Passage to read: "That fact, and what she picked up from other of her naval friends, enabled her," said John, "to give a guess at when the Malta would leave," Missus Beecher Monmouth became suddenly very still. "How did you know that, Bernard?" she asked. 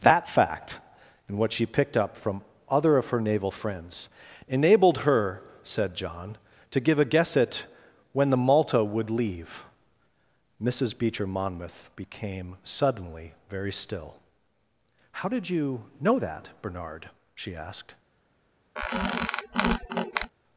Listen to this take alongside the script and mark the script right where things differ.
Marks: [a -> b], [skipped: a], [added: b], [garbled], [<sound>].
"That fact, and what she picked up from other of her naval friends, enabled her," said John, "to give a guess at when the Malta would leave," Missus Beecher Monmouth became suddenly very still. "How did you know that, Bernard?" she asked. [squeak]